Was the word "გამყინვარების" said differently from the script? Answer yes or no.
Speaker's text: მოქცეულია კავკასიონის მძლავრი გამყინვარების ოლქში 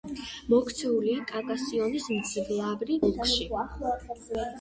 yes